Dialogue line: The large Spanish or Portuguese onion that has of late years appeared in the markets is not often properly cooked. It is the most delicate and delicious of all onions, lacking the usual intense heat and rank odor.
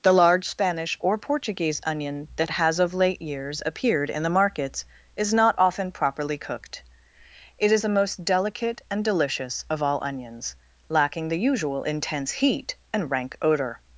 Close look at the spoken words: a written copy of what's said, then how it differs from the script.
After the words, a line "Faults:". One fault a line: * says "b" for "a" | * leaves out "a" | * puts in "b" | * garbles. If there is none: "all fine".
The large Spanish or Portuguese onion that has of late years appeared in the markets is not often properly cooked. It is the most delicate and delicious of all onions, lacking the usual intense heat and rank odor.
Faults:
all fine